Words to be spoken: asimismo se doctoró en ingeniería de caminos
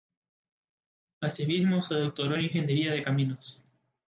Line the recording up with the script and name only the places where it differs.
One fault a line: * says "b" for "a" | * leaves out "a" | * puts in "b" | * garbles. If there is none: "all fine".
all fine